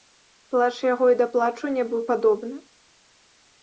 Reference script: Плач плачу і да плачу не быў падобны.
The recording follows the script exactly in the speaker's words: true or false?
false